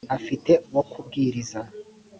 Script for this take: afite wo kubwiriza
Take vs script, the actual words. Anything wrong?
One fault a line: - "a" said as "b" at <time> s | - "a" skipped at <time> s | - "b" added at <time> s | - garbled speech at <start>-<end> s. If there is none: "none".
none